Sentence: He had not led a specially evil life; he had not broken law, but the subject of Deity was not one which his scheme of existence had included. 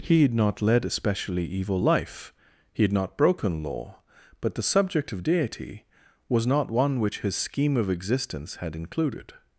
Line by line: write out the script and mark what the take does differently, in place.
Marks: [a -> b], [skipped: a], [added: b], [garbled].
He had not led a specially evil life; he had not broken law, but the subject of Deity was not one which his scheme of existence had included.